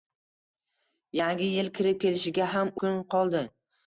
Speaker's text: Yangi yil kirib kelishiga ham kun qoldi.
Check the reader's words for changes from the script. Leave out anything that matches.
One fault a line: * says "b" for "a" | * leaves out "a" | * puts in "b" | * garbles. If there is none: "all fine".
all fine